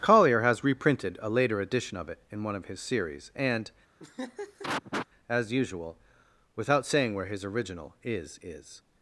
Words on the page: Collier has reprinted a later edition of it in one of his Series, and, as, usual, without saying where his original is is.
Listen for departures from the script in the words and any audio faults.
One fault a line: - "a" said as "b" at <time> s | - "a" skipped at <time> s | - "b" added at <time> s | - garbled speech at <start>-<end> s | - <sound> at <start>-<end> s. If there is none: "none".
- laugh at 4.0-5.1 s